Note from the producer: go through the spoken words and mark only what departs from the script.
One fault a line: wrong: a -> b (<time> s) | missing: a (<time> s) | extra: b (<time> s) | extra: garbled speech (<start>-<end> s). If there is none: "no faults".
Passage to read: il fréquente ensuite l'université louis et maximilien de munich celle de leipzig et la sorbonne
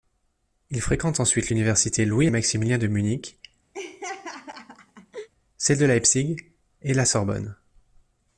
no faults